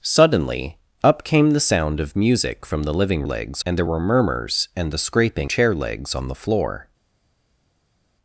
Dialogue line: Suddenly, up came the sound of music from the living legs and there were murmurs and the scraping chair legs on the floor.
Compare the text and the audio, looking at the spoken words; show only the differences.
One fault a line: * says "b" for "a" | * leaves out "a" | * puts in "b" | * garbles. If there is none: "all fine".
all fine